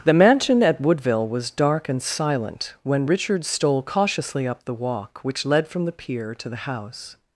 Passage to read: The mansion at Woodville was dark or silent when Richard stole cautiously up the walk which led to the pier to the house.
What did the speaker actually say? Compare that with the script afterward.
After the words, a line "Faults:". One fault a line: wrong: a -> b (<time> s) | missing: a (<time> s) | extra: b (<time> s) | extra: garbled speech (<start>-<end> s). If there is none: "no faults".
The mansion at Woodville was dark and silent when Richard stole cautiously up the walk which led from the pier to the house.
Faults:
wrong: or -> and (1.9 s)
wrong: to -> from (5.7 s)